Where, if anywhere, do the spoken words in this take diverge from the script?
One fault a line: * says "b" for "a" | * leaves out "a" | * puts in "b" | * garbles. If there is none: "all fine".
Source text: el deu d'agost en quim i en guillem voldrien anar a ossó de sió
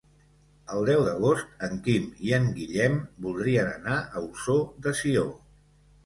all fine